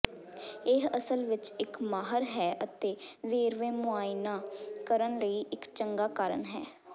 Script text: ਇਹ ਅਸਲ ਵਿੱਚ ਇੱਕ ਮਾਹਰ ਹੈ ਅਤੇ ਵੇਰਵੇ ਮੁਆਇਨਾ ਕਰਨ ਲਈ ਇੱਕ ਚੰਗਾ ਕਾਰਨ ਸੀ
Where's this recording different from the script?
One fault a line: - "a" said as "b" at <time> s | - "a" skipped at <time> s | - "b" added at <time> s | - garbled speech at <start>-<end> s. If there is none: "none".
- "ਸੀ" said as "ਹੈ" at 6.5 s